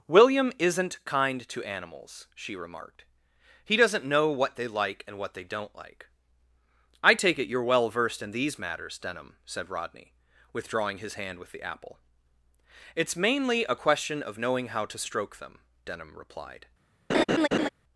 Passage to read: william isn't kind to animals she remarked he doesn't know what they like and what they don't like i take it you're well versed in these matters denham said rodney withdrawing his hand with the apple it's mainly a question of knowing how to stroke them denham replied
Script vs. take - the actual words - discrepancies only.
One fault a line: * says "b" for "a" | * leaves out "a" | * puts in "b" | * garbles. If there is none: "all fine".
all fine